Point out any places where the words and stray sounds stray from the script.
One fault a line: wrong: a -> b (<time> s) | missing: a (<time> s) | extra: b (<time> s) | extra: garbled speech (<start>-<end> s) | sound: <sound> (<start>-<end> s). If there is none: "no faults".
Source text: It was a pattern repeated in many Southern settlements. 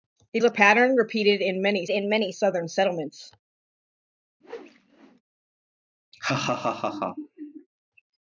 missing: was (0.4 s)
extra: in many (1.9 s)
sound: whoosh (4.4-5.2 s)
sound: laugh (6.1-7.7 s)